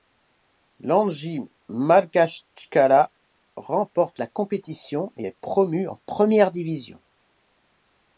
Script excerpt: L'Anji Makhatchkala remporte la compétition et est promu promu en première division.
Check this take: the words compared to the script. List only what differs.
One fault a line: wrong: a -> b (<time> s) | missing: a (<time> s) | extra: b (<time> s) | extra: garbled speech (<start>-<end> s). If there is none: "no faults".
missing: promu (5.9 s)